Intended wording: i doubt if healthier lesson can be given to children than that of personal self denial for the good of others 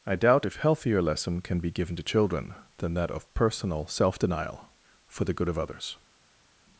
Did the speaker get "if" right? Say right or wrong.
right